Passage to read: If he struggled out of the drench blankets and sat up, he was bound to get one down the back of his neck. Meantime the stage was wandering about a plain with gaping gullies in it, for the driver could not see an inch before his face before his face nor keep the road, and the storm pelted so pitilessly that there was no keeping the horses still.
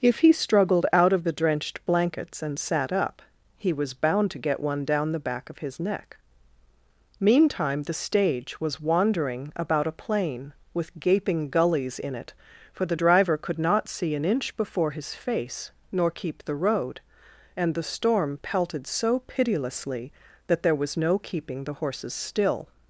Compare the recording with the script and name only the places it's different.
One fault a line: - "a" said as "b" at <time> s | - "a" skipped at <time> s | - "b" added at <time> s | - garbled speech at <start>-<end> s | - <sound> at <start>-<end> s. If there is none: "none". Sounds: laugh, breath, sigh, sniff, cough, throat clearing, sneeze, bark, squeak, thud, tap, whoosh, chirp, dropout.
- "drench" said as "drenched" at 1.3 s
- "before his face" skipped at 15.7 s